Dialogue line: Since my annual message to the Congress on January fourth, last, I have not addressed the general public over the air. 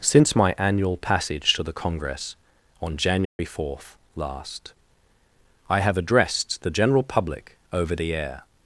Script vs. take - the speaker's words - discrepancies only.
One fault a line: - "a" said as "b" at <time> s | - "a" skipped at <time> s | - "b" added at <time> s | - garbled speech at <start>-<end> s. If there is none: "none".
- "message" said as "passage" at 1.0 s
- "not" skipped at 6.0 s